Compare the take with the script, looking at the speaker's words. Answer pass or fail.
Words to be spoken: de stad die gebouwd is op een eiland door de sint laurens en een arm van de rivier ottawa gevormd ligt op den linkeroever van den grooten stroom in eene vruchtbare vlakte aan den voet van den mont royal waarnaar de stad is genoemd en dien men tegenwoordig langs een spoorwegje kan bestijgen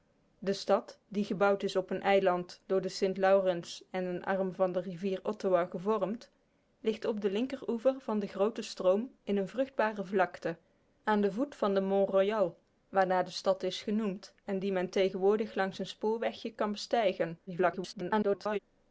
fail